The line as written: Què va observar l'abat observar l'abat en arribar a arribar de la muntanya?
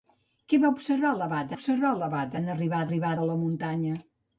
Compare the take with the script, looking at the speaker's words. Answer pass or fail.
pass